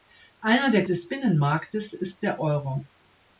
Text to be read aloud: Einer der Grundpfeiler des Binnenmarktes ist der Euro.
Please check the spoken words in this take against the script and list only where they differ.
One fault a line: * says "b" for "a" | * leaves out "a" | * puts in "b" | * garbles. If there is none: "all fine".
* leaves out "Grundpfeiler"